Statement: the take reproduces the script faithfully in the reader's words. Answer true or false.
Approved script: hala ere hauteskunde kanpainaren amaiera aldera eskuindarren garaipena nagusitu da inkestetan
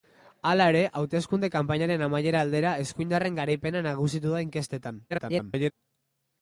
false